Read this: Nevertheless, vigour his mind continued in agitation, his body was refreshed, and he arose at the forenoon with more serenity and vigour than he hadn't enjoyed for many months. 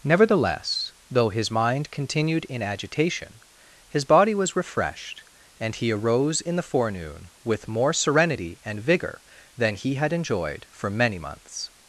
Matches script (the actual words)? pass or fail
fail